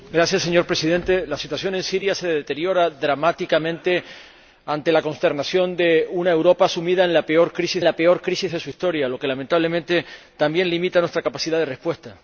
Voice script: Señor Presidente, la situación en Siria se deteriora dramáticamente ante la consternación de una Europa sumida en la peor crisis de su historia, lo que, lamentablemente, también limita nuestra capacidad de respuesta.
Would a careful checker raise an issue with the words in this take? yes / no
yes